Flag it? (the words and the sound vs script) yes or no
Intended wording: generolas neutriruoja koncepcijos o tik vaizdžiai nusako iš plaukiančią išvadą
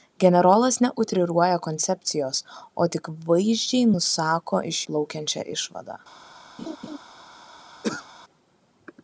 yes